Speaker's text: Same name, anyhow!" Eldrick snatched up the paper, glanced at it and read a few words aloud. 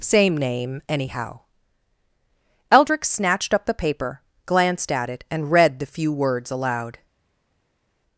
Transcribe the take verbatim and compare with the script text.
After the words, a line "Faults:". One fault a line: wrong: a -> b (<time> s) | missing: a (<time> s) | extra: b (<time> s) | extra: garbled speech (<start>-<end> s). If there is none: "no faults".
Same name, anyhow!" Eldrick snatched up the paper, glanced at it and read the few words aloud.
Faults:
wrong: a -> the (5.8 s)